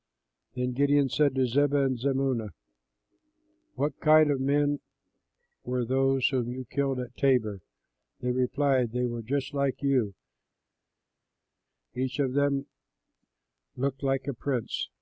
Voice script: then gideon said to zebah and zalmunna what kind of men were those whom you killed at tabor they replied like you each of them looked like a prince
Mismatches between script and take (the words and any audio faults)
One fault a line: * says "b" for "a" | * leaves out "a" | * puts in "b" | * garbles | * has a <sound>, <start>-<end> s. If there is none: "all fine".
* puts in "they were just"